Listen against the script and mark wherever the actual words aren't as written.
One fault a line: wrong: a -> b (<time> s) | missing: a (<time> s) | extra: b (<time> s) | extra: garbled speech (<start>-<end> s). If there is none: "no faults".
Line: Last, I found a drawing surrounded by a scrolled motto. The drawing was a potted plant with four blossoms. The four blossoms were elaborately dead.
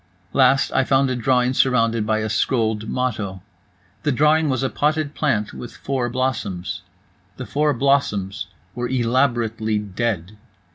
no faults